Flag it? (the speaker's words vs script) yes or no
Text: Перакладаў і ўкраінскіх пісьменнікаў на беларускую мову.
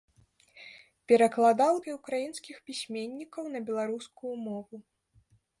no